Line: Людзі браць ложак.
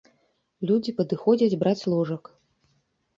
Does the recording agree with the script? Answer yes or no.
no